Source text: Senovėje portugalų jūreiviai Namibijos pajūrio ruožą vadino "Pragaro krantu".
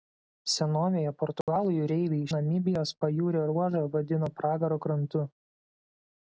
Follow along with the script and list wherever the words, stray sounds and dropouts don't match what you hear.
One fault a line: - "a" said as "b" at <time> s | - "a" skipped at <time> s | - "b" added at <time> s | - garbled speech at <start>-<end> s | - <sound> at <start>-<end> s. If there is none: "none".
- dropout at 1.4-1.5 s